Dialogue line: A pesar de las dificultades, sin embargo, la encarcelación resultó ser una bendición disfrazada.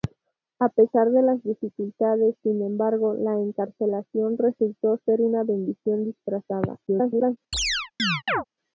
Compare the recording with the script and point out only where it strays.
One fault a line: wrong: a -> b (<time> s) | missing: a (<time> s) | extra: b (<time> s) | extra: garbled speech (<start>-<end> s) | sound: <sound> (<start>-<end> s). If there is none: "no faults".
extra: garbled speech (6.9-7.4 s)
sound: chirp (7.5-8.4 s)